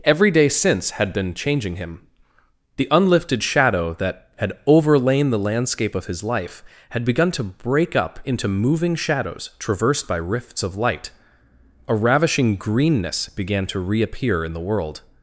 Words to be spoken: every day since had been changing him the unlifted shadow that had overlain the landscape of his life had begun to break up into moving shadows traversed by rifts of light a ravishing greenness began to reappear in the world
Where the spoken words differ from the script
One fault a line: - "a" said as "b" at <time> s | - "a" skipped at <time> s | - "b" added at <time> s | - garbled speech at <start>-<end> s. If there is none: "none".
none